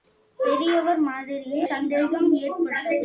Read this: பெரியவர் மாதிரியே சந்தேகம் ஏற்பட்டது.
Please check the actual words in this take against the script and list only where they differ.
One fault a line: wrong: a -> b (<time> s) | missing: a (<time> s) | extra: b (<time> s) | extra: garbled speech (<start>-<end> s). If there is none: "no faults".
no faults